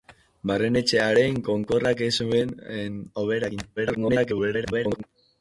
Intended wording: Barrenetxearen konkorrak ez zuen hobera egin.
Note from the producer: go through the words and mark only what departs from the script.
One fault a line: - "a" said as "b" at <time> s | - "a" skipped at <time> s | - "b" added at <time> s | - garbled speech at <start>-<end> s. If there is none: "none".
- garbled speech at 3.8-5.0 s